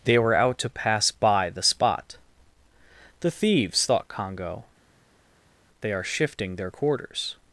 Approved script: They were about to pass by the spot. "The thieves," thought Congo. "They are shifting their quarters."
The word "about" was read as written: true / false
false